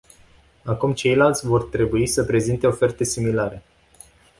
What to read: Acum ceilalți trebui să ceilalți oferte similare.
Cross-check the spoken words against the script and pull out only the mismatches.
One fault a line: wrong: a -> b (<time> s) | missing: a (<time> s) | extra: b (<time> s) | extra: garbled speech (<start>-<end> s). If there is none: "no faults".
extra: vor (1.5 s)
wrong: ceilalți -> prezinte (2.2 s)